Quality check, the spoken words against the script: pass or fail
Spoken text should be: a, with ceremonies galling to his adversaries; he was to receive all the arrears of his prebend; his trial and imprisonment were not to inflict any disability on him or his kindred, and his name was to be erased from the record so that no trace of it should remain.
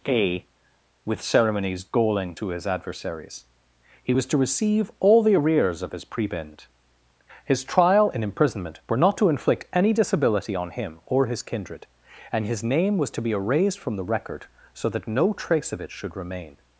pass